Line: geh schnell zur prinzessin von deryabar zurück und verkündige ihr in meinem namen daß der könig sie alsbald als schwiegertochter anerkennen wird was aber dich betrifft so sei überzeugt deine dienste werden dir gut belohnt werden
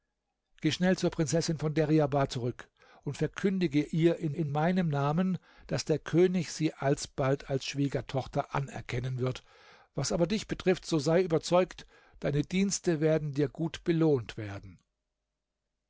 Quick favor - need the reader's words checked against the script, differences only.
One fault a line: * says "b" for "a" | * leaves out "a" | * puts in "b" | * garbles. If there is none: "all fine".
* puts in "in"